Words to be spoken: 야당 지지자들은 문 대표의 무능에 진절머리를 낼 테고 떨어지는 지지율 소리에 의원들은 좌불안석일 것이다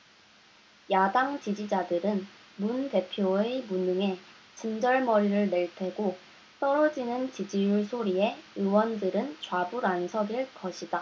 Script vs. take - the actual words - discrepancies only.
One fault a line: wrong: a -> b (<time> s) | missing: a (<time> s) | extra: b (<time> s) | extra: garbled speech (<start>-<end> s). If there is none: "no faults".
no faults